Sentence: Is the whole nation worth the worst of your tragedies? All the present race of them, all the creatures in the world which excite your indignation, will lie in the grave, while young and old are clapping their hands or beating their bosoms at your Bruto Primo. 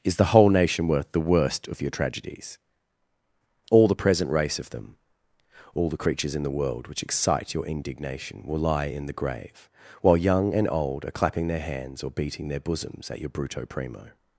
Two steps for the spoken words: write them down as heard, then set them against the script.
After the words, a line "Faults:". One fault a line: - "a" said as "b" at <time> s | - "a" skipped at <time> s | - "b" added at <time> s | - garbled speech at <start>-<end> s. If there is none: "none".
Is the whole nation worth the worst of your tragedies? All the present race of them, all the creatures in the world which excite your indignation, will lie in the grave, while young and old are clapping their hands or beating their bosoms at your Bruto Primo.
Faults:
none